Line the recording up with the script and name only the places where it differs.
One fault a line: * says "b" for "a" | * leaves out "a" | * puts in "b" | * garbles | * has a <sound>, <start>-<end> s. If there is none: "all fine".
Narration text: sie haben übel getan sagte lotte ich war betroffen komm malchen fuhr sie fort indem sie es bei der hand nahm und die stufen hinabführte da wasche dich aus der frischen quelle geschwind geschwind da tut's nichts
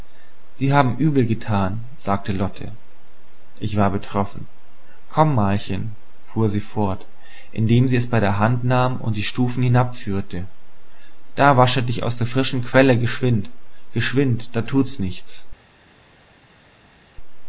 all fine